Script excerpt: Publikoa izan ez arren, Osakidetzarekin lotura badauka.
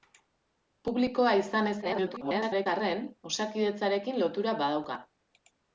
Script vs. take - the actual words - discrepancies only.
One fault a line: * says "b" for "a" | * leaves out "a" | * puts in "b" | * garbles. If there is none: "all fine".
* garbles